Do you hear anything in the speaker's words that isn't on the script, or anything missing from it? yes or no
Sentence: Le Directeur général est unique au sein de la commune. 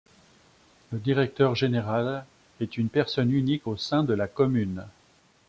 yes